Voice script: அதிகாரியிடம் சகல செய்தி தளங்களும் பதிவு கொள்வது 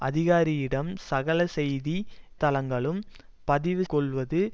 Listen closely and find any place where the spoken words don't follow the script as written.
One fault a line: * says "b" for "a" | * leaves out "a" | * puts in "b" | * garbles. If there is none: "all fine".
all fine